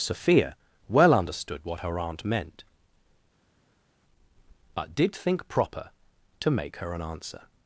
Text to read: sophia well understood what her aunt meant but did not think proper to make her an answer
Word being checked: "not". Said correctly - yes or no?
no